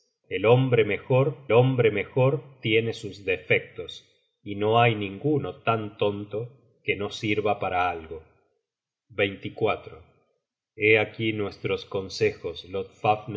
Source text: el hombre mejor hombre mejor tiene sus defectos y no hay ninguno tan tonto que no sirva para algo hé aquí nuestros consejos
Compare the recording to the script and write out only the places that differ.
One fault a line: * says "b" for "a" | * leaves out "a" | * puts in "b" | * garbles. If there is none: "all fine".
all fine